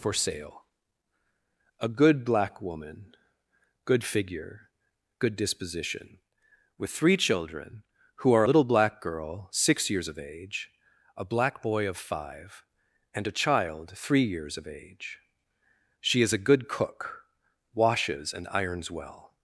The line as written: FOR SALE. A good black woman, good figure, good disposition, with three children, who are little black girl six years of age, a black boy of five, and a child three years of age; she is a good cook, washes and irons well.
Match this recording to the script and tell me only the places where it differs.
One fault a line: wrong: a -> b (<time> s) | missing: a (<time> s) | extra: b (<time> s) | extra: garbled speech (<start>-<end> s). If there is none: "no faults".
no faults